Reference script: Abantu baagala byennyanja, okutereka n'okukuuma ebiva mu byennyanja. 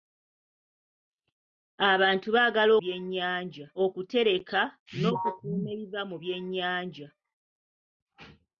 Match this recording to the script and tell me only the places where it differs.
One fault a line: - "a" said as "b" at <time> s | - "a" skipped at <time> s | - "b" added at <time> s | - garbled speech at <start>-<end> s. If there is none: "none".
none